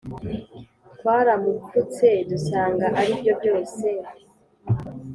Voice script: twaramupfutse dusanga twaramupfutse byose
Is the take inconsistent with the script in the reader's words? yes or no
yes